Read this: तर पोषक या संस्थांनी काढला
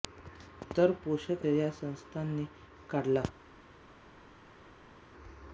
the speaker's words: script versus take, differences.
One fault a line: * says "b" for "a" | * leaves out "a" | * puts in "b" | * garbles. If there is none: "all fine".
all fine